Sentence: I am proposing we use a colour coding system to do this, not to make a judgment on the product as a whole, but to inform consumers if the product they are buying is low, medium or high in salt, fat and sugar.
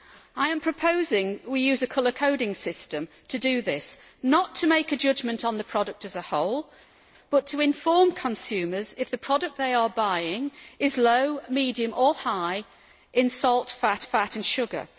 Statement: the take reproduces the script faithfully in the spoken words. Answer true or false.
false